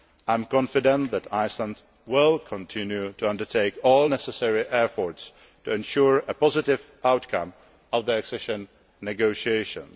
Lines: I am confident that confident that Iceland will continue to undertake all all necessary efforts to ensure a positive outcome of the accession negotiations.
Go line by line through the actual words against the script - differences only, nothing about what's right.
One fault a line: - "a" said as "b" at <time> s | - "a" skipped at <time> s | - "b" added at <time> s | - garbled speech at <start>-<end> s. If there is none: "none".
- "confident that" skipped at 1.3 s
- "all" skipped at 4.1 s